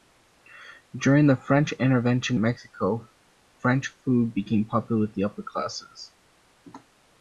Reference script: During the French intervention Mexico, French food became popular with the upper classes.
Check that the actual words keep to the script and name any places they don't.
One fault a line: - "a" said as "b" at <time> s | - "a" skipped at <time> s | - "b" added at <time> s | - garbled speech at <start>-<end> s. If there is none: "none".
none